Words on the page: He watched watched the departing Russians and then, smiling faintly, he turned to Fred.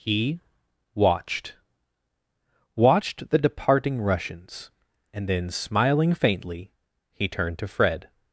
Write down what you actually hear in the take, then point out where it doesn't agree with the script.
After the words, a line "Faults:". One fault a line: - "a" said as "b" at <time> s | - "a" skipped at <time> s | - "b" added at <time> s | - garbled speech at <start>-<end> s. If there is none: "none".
He watched watched the departing Russians and then, smiling faintly, he turned to Fred.
Faults:
none